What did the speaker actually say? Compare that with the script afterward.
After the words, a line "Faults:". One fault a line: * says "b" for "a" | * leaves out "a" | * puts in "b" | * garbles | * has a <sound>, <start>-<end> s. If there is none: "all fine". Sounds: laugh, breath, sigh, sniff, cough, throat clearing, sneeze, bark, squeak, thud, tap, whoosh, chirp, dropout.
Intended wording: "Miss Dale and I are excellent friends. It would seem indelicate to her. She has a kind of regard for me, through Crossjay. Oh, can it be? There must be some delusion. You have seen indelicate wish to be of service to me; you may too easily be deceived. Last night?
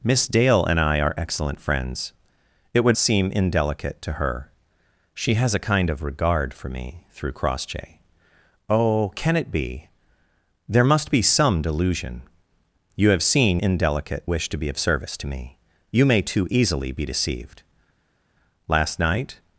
"Miss Dale and I are excellent friends. It would seem indelicate to her. She has a kind of regard for me, through Crossjay. Oh, can it be? There must be some delusion. You have seen indelicate wish to be of service to me; you may too easily be deceived. Last night?
Faults:
all fine